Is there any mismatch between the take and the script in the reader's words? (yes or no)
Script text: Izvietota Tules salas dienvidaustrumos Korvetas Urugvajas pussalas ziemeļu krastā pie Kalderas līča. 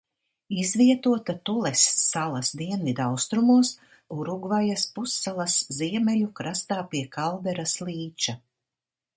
yes